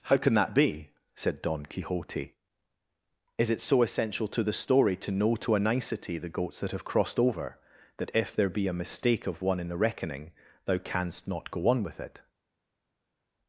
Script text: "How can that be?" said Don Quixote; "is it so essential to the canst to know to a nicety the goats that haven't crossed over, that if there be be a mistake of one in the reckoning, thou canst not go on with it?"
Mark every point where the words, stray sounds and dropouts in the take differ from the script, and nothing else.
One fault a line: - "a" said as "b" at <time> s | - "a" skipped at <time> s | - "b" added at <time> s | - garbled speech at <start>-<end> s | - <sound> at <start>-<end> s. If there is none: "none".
- "canst" said as "story" at 4.5 s
- "haven't" said as "have" at 6.7 s
- "be" skipped at 8.7 s